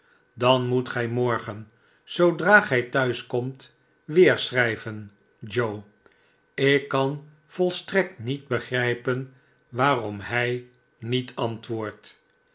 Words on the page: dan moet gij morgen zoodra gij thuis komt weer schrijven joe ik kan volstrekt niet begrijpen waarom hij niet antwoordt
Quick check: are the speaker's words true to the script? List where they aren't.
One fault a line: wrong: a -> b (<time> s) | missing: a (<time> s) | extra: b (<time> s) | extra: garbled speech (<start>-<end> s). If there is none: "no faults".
no faults